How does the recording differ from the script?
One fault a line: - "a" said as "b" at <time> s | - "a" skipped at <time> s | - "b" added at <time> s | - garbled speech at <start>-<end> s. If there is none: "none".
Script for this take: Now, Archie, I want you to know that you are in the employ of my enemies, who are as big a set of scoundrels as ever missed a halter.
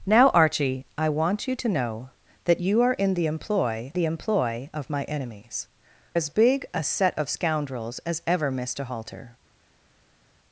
- "the employ" added at 3.9 s
- "who are" skipped at 5.7 s